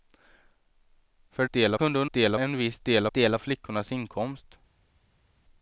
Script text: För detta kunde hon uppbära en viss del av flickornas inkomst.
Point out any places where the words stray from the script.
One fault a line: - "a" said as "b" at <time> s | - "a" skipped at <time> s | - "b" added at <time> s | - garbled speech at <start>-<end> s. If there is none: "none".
- "detta" said as "del" at 1.5 s
- "uppbära" said as "del" at 2.1 s
- "del" added at 3.1 s